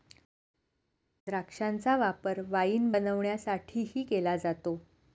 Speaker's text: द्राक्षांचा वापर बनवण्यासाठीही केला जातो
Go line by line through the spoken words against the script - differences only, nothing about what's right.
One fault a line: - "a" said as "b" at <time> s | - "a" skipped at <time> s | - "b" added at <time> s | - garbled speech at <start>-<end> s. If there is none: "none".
- "वाईन" added at 2.5 s